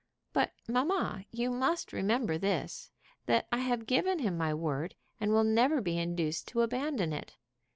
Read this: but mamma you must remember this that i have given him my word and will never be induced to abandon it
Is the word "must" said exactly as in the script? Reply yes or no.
yes